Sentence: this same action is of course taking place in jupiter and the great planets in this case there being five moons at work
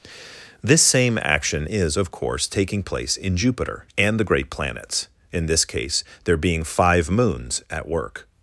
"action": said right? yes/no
yes